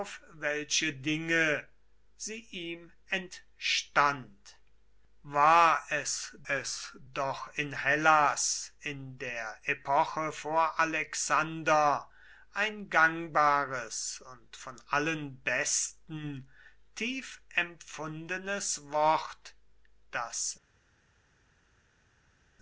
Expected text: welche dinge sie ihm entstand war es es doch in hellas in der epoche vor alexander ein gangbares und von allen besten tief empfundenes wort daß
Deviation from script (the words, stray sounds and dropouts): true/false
false